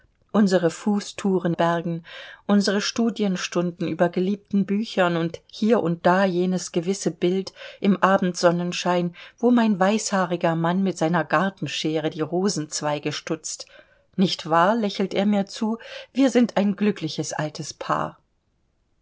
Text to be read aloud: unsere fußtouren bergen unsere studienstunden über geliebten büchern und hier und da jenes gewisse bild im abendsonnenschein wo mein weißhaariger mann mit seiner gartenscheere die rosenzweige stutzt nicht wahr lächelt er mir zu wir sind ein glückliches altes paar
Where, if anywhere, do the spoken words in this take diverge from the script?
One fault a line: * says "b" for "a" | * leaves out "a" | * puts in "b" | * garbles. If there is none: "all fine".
all fine